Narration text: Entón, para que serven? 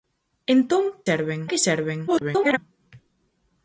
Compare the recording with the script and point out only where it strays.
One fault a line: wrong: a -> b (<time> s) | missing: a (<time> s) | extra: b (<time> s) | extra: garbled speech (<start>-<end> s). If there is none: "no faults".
wrong: para -> serven (1.1 s)
extra: garbled speech (2.1-2.6 s)